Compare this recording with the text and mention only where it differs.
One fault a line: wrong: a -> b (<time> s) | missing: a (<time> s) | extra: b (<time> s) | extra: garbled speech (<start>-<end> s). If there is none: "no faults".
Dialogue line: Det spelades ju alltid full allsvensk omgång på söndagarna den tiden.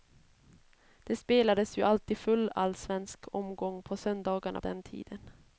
no faults